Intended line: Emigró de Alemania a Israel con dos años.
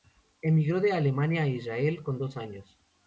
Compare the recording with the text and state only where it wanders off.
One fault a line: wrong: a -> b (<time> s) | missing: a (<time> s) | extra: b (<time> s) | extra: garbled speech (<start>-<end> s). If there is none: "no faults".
no faults